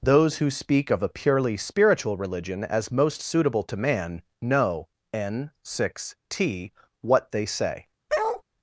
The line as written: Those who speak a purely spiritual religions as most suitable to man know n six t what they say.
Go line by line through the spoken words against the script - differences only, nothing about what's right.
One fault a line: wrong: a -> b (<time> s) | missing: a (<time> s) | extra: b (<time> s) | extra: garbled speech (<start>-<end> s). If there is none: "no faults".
extra: of (0.9 s)
wrong: religions -> religion (2.2 s)